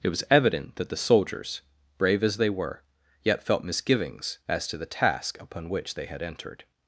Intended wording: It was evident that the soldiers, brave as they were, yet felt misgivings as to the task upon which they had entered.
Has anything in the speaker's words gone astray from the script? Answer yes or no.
no